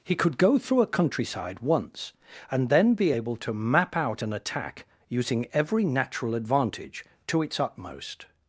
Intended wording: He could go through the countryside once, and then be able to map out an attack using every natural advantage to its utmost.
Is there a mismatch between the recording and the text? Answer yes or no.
yes